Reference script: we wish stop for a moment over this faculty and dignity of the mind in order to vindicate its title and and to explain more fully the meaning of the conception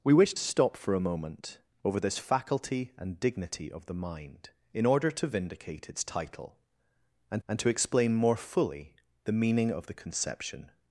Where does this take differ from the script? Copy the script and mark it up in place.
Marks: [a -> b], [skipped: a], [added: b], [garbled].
we wish stop for a moment over this faculty and dignity of the mind in order to vindicate its title and and to explain more fully the meaning of the conception